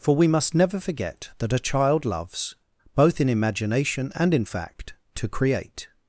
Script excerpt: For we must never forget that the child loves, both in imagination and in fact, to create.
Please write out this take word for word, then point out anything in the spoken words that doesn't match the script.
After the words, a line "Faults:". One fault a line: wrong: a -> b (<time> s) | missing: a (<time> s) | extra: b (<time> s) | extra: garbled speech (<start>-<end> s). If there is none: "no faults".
For we must never forget that a child loves, both in imagination and in fact, to create.
Faults:
wrong: the -> a (1.5 s)